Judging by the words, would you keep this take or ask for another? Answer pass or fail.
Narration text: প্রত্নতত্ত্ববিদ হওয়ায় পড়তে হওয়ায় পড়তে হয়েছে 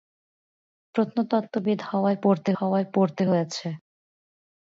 pass